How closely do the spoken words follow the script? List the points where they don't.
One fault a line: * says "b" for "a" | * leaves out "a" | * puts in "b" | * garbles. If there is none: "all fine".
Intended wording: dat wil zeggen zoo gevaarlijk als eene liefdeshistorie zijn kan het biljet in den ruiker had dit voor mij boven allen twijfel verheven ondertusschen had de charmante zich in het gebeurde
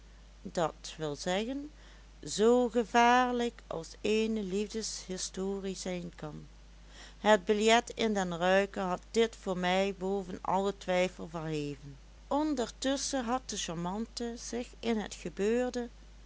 all fine